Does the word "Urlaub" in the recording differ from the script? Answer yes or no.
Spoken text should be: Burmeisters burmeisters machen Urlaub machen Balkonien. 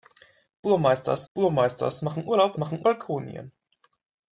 no